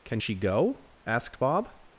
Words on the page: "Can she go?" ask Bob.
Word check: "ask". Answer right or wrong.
wrong